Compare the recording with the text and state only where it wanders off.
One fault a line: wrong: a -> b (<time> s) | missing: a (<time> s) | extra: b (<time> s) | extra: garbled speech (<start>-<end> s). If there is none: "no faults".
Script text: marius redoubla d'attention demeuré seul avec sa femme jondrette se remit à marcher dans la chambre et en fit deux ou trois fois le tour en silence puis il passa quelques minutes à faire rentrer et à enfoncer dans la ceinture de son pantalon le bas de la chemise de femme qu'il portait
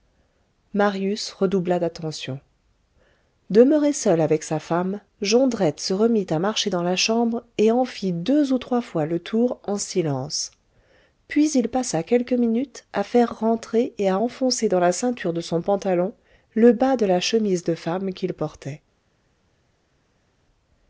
no faults